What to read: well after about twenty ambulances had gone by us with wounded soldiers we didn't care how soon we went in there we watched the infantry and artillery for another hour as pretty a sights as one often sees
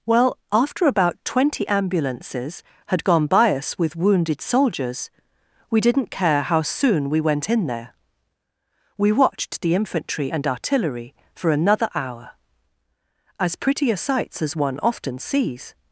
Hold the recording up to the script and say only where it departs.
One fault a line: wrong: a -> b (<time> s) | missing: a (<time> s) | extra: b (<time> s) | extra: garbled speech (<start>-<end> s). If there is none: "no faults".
no faults